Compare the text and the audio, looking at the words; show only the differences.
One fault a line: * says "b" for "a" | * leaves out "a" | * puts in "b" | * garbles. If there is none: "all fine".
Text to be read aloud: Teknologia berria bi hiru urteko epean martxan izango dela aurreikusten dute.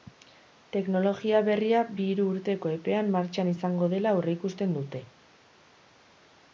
all fine